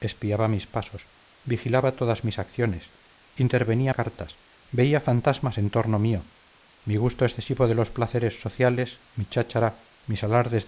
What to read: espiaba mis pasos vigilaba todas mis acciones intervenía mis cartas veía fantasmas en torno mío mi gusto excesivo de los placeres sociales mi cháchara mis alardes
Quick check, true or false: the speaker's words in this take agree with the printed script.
false